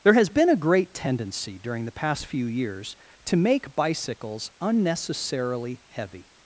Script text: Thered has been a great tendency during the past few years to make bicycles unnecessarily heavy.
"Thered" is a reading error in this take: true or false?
true